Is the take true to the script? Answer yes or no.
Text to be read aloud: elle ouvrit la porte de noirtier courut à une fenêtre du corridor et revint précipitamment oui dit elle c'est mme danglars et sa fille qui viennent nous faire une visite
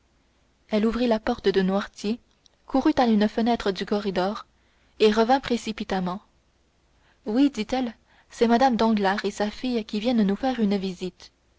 yes